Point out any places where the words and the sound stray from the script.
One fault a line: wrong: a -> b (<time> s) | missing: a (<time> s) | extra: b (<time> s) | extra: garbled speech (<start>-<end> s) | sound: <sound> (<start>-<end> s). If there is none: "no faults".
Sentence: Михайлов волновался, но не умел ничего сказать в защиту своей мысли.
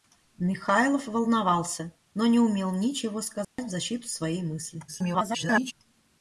sound: dropout (3.4-3.6 s)
extra: garbled speech (4.9-5.7 s)